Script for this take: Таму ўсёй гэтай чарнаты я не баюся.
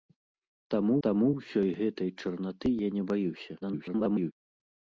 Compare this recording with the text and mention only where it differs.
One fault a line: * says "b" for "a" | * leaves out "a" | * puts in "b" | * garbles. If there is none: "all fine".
* puts in "таму"
* garbles